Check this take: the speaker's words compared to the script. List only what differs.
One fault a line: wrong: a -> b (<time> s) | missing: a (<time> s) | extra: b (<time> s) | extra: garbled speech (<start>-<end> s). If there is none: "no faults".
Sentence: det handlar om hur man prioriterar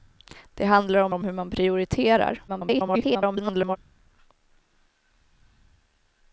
extra: om (1.1 s)
extra: garbled speech (2.5-3.8 s)